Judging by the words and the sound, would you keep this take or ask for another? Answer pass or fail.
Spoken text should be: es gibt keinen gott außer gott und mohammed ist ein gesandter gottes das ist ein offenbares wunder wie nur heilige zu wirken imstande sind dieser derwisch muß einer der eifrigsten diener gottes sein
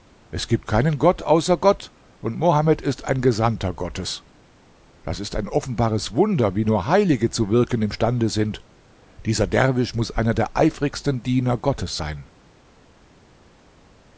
pass